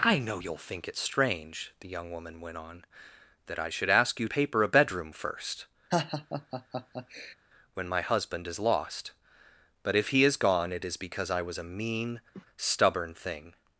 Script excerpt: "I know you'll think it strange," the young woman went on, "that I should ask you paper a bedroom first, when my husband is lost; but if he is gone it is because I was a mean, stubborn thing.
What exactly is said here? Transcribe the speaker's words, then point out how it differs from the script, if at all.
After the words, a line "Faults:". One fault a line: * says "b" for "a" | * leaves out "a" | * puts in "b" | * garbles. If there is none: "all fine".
"I know you'll think it strange," the young woman went on, "that I should ask you paper a bedroom first, when my husband is lost; but if he is gone it is because I was a mean, stubborn thing.
Faults:
all fine